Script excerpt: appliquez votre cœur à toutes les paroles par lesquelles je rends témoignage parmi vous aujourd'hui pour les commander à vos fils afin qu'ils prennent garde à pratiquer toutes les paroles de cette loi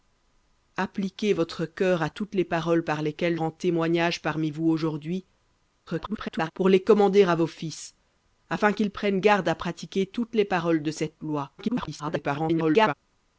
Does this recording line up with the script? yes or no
no